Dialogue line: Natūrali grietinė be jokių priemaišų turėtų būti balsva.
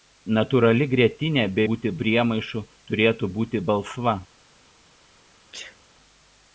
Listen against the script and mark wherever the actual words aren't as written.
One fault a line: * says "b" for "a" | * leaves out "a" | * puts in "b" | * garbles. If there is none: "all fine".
* says "būti" for "jokių"